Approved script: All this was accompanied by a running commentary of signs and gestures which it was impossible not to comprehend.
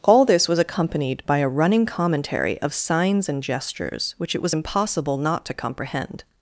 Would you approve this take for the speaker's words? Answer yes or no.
yes